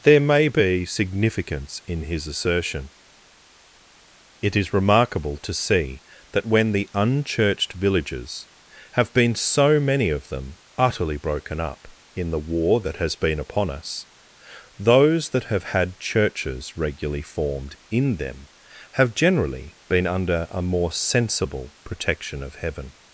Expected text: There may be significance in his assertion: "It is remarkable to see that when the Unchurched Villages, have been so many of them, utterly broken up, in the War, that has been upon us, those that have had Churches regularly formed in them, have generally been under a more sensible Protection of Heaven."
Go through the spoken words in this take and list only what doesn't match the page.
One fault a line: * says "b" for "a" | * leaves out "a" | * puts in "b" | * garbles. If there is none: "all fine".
all fine